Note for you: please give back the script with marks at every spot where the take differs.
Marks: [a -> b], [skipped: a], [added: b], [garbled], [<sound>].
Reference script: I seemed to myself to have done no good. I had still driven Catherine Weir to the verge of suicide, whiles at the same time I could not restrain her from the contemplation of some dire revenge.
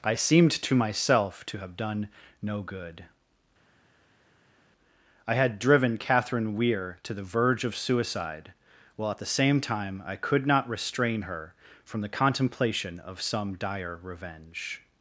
I seemed to myself to have done no good. I had [skipped: still] driven Catherine Weir to the verge of suicide, [whiles -> while] at the same time I could not restrain her from the contemplation of some dire revenge.